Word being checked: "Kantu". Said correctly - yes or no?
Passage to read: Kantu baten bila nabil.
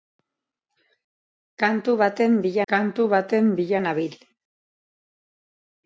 yes